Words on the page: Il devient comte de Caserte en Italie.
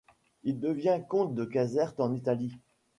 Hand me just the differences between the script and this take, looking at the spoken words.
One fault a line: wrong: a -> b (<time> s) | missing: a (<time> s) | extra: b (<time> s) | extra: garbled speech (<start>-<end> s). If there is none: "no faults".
no faults